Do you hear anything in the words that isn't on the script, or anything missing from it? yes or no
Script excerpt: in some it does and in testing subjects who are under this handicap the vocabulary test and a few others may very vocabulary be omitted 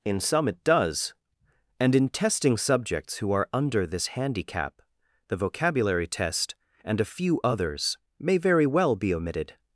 yes